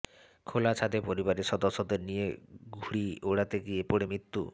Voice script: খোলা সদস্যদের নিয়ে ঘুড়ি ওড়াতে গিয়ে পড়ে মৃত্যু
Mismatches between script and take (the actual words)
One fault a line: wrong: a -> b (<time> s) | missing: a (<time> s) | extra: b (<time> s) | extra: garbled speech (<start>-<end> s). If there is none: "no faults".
extra: ছাদে পরিবারের (0.7 s)